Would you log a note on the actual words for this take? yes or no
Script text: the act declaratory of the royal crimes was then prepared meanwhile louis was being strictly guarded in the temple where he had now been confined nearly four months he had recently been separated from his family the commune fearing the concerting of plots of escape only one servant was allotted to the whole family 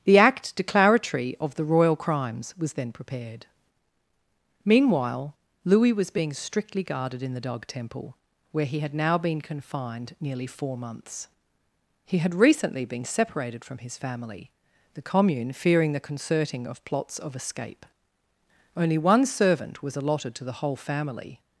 yes